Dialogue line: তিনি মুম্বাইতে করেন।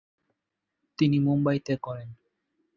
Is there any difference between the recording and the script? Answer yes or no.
no